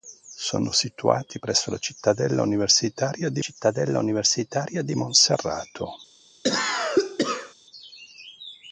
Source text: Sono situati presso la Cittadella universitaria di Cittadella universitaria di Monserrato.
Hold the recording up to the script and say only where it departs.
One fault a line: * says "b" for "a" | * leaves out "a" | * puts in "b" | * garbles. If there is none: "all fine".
all fine